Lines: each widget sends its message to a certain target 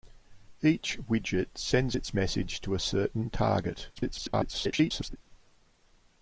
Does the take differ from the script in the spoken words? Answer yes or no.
yes